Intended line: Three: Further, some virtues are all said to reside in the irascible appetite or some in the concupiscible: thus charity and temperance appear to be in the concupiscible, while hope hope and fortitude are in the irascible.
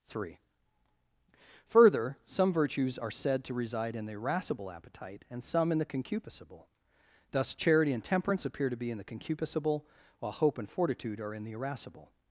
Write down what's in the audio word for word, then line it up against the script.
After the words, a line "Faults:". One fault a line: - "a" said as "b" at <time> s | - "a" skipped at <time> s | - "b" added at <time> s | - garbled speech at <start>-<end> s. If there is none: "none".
Three: Further, some virtues are said to reside in the irascible appetite and some in the concupiscible: thus charity and temperance appear to be in the concupiscible, while hope and fortitude are in the irascible.
Faults:
- "all" skipped at 3.1 s
- "or" said as "and" at 5.3 s
- "hope" skipped at 10.6 s